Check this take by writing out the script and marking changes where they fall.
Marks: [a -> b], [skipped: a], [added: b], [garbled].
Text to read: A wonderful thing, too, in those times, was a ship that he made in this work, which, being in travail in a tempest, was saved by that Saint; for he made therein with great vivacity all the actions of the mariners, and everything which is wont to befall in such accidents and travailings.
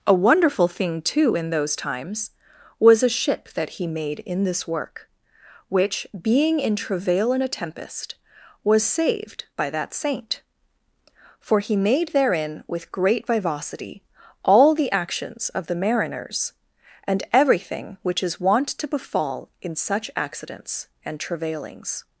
A wonderful thing, too, in those times, was a ship that he made in this work, which, being in travail in a tempest, was saved by that Saint; for he made therein with great vivacity all the actions of the mariners, and everything which is wont to befall in such accidents and travailings.